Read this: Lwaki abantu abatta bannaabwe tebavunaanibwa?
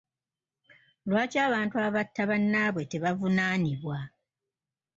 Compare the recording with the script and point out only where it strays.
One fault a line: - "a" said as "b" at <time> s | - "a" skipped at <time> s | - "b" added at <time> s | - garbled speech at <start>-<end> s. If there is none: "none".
none